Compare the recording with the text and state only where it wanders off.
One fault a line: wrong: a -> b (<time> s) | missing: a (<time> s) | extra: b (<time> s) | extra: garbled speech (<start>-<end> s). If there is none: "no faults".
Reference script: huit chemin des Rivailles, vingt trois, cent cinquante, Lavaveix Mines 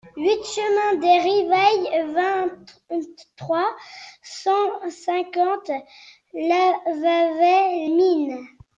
no faults